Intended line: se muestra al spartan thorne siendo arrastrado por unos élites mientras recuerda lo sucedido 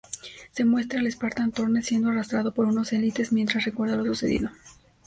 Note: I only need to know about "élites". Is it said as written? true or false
true